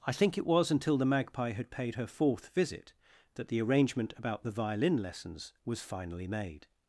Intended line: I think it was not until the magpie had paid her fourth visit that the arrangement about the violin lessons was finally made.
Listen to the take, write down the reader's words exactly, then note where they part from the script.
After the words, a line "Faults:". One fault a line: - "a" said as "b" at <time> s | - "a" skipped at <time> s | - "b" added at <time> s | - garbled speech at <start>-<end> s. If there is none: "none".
I think it was until the magpie had paid her fourth visit that the arrangement about the violin lessons was finally made.
Faults:
- "not" skipped at 0.7 s